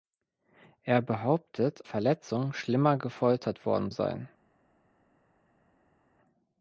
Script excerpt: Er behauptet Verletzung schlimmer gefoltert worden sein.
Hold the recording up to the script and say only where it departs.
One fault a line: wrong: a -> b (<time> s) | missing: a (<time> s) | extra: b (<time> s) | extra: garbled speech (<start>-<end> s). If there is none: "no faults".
no faults